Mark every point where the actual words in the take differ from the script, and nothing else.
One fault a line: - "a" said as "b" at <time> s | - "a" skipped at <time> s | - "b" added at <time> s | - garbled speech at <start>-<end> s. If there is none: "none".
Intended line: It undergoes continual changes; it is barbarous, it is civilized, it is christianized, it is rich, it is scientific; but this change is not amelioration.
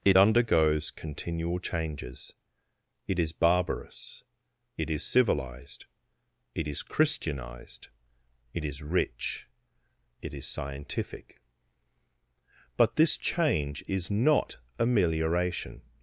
none